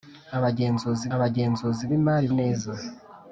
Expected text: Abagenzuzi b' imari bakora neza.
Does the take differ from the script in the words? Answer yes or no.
yes